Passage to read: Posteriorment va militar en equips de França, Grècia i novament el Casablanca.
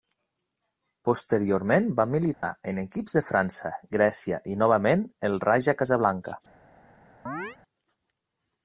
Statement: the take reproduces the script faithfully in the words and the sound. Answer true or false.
false